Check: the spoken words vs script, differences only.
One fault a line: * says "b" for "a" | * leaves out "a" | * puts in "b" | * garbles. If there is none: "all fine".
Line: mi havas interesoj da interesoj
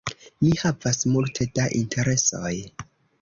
* says "multe" for "interesoj"